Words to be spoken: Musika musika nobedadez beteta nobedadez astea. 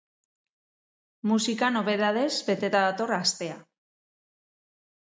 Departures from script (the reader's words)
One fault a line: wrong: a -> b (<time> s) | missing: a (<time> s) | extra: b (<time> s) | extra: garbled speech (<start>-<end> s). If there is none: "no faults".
missing: musika (1.7 s)
wrong: nobedadez -> dator (2.9 s)